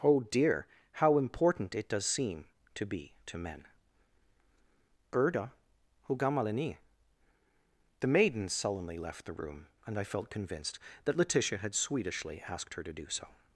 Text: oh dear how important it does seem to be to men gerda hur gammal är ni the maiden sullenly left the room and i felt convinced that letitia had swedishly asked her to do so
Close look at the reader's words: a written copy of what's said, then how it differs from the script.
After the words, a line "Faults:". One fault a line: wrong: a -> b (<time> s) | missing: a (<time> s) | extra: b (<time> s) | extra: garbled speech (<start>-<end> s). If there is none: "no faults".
oh dear how important it does seem to be to men gerda hur gammal är ni the maiden sullenly left the room and i felt convinced that letitia had swedishly asked her to do so
Faults:
no faults